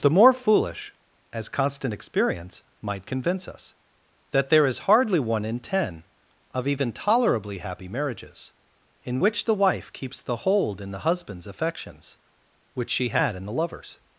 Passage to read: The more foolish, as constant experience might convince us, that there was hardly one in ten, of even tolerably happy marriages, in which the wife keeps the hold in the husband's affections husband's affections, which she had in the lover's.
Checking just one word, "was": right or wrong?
wrong